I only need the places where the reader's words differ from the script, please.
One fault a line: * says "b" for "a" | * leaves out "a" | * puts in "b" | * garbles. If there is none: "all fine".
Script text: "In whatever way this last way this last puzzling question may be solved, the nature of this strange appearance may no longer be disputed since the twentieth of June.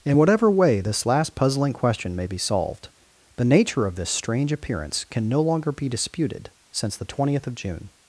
* leaves out "way this last"
* says "can" for "may"